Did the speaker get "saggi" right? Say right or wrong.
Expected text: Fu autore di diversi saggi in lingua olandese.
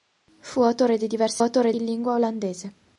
wrong